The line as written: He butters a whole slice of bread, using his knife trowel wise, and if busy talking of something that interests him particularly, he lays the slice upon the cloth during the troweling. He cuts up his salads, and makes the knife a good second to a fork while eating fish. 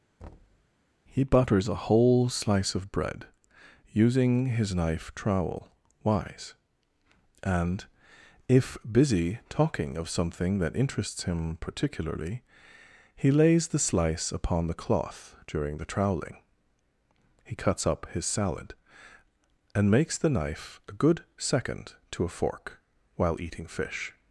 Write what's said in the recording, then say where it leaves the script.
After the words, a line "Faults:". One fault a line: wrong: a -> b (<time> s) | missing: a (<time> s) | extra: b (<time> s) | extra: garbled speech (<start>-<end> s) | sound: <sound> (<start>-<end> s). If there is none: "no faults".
He butters a whole slice of bread, using his knife trowel wise, and if busy talking of something that interests him particularly, he lays the slice upon the cloth during the troweling. He cuts up his salad, and makes the knife a good second to a fork while eating fish.
Faults:
sound: thud (0.2-0.7 s)
wrong: salads -> salad (18.3 s)